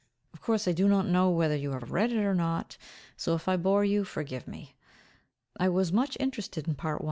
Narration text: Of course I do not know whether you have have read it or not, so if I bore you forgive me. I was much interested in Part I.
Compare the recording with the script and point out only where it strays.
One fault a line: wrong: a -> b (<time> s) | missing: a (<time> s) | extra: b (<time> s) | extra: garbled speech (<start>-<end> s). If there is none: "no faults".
no faults